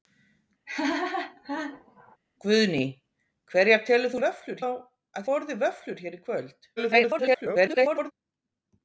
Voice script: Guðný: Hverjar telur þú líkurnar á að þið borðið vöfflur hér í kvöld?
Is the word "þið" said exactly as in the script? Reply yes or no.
no